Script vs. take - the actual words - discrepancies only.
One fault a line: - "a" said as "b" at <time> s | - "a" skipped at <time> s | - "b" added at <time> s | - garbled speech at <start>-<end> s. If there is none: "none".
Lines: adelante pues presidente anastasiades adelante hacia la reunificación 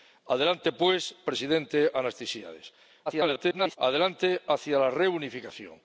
- garbled speech at 3.1-3.8 s